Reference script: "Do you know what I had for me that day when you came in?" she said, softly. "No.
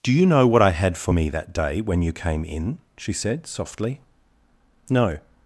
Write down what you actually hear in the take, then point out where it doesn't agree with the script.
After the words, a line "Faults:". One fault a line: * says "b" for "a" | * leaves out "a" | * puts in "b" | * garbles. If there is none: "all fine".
"Do you know what I had for me that day when you came in?" she said, softly. "No.
Faults:
all fine